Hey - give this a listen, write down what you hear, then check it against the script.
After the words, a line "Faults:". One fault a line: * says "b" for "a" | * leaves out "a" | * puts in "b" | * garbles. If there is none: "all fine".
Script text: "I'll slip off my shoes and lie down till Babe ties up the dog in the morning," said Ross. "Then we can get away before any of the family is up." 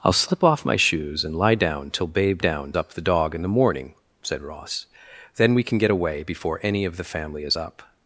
"I'll slip off my shoes and lie down till Babe down up the dog in the morning," said Ross. "Then we can get away before any of the family is up."
Faults:
* says "down" for "ties"